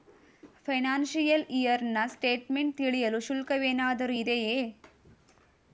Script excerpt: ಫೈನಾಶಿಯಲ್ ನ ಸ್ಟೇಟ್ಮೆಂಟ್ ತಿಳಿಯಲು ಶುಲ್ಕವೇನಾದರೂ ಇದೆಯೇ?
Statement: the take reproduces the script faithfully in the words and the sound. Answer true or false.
false